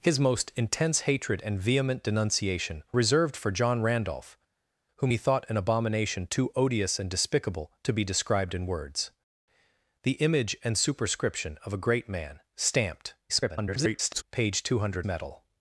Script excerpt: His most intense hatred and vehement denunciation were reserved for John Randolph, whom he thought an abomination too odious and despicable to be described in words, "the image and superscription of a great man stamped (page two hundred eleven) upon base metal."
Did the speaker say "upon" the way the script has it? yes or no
no